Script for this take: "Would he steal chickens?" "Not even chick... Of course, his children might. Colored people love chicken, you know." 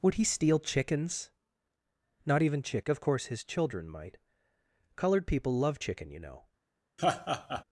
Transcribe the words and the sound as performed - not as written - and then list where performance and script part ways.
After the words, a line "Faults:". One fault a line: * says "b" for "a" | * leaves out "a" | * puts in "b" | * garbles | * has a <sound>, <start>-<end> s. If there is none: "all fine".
"Would he steal chickens?" "Not even chick... Of course, his children might. Colored people love chicken, you know."
Faults:
* has a laugh, 7.0-7.6 s